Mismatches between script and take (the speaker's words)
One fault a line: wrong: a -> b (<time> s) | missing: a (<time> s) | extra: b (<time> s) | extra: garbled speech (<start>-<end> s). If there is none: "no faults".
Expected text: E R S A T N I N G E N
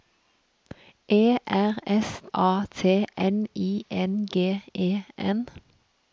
no faults